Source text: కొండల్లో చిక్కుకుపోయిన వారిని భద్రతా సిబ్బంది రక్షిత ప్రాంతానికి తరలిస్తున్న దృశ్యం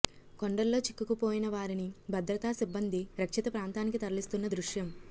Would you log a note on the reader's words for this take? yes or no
no